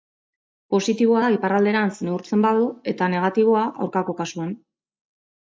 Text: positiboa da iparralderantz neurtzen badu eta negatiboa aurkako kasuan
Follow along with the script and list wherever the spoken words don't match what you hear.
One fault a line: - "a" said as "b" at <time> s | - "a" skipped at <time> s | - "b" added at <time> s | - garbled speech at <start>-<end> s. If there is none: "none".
none